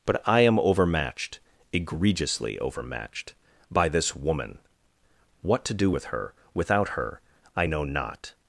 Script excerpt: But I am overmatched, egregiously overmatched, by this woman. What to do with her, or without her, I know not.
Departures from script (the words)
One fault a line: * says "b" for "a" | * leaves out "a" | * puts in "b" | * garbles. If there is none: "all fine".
* leaves out "or"